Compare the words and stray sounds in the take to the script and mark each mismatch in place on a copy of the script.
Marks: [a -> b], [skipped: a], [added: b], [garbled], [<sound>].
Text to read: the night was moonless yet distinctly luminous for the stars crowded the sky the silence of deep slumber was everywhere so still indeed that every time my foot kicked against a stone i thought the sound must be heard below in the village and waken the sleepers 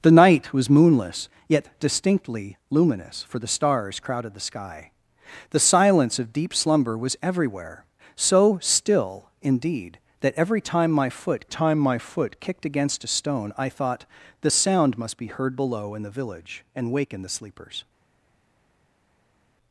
the night was moonless yet distinctly luminous for the stars crowded the sky the silence of deep slumber was everywhere so still indeed that every time my foot [added: time my foot] kicked against a stone i thought the sound must be heard below in the village and waken the sleepers